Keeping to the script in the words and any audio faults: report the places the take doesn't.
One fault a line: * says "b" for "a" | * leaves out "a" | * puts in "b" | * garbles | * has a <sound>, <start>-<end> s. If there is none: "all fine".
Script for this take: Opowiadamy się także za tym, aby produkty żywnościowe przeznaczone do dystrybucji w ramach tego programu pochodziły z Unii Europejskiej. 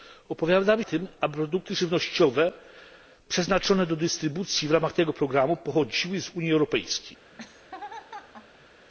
* leaves out "się także za"
* has a laugh, 7.3-8.9 s